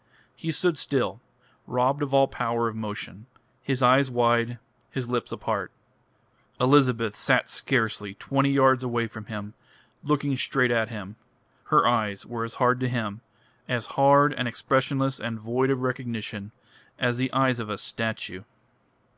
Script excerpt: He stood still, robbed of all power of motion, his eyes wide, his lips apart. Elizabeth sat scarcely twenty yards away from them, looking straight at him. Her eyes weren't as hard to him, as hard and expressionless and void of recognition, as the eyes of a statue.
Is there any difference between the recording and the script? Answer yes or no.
yes